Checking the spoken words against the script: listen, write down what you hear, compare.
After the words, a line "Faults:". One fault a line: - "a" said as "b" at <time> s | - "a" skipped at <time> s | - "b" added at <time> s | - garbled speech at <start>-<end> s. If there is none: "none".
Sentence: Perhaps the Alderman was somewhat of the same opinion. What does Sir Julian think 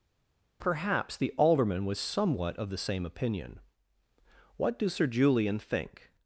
Perhaps the Alderman was somewhat of the same opinion. What do Sir Julian think
Faults:
- "does" said as "do" at 4.8 s